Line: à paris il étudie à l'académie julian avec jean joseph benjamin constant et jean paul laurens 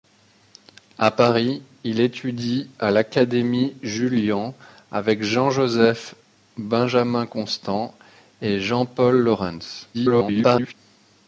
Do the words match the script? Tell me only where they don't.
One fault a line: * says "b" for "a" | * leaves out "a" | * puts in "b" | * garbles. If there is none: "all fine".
* garbles